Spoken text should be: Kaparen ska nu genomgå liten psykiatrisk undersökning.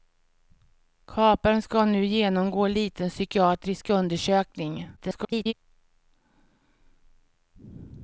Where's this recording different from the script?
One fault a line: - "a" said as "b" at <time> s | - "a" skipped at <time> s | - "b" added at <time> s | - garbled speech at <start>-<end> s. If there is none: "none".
- garbled speech at 5.0-5.5 s